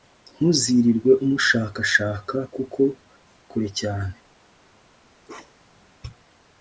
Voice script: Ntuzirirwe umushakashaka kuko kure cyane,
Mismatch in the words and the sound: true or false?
true